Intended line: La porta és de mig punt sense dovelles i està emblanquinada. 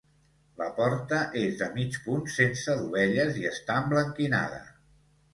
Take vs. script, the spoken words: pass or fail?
pass